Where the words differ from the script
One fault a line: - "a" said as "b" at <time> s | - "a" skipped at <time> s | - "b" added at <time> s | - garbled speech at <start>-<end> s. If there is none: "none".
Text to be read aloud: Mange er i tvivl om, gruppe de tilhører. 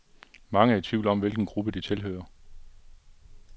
- "hvilken" added at 1.2 s